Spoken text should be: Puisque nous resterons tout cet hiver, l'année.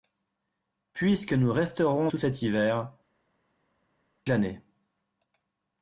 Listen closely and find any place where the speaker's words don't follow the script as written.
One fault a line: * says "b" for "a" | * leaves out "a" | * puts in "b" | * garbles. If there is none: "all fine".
all fine